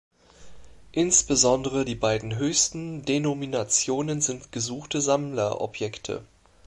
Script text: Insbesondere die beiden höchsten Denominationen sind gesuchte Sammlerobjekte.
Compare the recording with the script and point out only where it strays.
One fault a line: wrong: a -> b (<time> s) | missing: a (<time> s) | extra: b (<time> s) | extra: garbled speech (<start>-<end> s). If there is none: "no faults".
no faults